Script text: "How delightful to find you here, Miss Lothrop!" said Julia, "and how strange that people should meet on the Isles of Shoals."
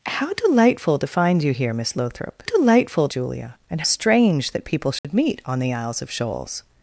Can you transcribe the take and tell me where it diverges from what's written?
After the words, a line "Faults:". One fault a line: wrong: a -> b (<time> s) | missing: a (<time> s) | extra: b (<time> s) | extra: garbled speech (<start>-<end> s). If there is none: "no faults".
"How delightful to find you here, Miss Lothrop!" delightful Julia, "and strange that people should meet on the Isles of Shoals."
Faults:
wrong: said -> delightful (2.4 s)
missing: how (3.8 s)